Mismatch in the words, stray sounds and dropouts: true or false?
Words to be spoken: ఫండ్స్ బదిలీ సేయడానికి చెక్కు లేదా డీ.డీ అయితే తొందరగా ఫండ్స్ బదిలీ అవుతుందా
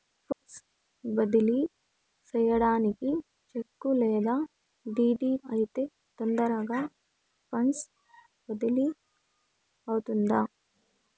true